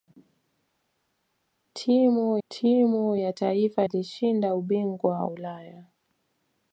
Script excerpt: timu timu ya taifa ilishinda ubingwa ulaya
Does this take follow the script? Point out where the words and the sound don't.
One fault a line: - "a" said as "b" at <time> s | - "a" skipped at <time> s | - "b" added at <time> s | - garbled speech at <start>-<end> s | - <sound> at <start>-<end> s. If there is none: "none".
none